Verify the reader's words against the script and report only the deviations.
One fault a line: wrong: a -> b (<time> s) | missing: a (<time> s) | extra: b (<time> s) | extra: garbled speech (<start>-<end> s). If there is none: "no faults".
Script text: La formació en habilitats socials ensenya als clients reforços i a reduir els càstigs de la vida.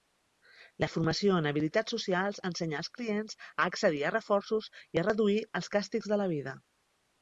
extra: a accedir a (3.4 s)